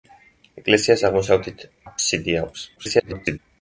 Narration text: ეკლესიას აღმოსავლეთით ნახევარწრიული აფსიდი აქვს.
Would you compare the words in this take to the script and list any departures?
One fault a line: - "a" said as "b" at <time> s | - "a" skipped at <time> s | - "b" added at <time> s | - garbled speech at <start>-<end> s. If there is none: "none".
- "ნახევარწრიული" skipped at 1.7 s
- garbled speech at 2.8-3.4 s